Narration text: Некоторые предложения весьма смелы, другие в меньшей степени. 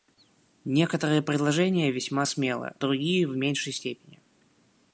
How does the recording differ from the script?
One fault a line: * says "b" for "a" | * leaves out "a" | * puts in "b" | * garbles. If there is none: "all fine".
all fine